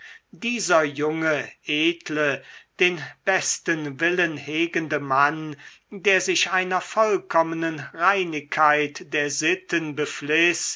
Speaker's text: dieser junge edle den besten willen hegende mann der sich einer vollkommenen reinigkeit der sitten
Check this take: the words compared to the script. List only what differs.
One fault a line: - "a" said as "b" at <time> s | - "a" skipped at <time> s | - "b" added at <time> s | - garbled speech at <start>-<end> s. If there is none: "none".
none